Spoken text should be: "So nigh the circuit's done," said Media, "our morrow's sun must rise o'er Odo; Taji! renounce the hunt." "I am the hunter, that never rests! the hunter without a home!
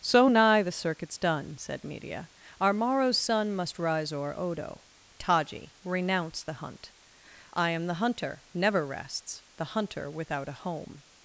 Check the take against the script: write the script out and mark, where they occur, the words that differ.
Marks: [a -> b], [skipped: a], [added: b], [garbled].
"So nigh the circuit's done," said Media, "our morrow's sun must rise o'er Odo; Taji! renounce the hunt." "I am the hunter, [skipped: that] never rests! the hunter without a home!